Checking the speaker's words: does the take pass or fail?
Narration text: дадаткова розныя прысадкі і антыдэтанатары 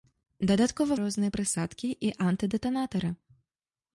pass